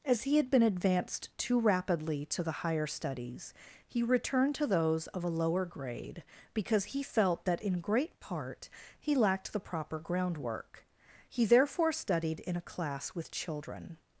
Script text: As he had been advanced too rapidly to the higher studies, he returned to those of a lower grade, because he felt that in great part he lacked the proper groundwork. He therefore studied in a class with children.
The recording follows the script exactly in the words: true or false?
true